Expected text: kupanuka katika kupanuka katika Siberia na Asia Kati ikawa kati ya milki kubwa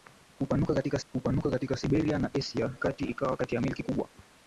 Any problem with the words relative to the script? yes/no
no